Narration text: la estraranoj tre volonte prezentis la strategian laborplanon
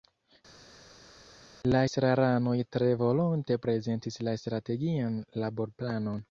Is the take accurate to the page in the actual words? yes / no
yes